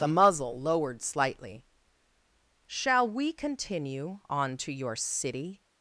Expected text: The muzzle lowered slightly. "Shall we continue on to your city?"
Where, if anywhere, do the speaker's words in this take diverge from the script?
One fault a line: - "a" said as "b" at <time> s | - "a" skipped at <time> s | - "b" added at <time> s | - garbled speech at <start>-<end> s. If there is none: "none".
none